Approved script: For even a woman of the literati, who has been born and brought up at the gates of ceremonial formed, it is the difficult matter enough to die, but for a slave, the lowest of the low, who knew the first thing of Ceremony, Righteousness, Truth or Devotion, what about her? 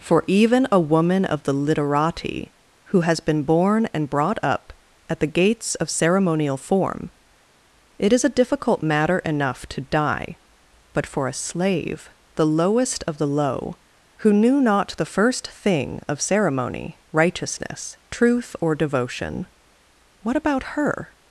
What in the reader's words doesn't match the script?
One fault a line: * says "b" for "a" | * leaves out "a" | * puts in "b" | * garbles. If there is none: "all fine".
* says "form" for "formed"
* says "a" for "the"
* puts in "not"